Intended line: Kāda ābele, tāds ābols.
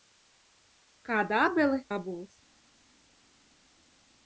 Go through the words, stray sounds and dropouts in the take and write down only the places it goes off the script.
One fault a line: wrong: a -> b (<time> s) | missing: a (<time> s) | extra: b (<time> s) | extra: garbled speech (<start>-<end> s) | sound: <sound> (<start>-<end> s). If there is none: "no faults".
missing: tāds (1.8 s)